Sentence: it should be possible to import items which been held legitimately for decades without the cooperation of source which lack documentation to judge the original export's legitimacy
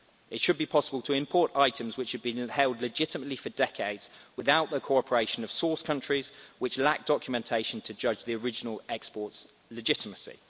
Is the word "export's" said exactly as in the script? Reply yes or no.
yes